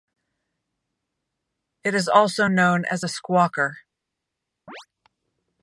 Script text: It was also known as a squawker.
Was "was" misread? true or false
true